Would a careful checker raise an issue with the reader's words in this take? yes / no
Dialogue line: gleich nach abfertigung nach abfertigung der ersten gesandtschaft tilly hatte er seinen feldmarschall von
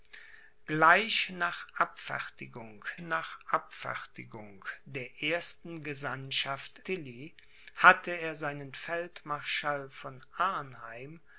no